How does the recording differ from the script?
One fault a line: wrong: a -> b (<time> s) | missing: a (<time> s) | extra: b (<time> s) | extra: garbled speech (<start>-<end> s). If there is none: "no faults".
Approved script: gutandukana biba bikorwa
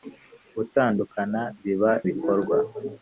no faults